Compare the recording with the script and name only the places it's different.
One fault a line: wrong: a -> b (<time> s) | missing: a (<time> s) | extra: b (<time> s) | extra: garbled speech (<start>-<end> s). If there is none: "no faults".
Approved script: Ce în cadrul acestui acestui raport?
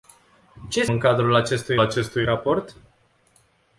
no faults